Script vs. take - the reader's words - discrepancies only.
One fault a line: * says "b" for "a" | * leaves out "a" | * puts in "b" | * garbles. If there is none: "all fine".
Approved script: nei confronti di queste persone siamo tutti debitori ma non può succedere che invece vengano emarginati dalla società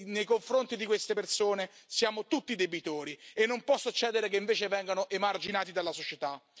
* says "e" for "ma"